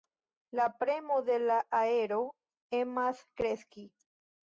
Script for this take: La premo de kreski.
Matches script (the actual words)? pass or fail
fail